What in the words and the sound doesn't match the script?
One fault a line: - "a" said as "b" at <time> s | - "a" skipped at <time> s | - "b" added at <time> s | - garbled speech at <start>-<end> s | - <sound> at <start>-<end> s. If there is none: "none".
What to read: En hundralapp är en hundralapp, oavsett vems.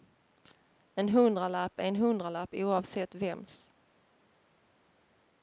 none